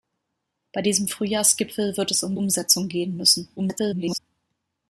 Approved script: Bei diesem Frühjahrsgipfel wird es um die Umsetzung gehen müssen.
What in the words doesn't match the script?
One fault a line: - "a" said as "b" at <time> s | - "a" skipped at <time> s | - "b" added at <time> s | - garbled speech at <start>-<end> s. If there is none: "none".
- "die" skipped at 2.4 s
- garbled speech at 3.6-4.2 s